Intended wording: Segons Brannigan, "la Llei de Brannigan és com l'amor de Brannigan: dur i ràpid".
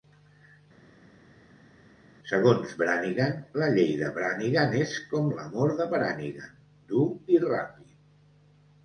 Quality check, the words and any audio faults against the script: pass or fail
pass